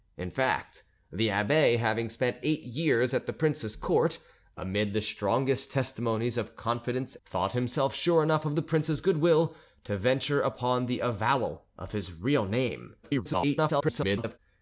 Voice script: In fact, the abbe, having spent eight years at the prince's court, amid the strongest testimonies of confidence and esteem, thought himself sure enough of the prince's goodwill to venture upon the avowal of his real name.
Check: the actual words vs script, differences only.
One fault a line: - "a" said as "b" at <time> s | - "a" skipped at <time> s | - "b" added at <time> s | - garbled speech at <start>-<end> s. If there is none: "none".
- "and esteem" skipped at 7.2 s
- garbled speech at 13.0-14.4 s